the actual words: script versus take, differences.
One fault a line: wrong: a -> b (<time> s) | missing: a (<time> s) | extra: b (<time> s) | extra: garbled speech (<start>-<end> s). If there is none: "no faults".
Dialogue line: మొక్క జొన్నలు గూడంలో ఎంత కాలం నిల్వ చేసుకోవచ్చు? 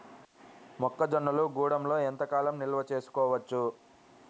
no faults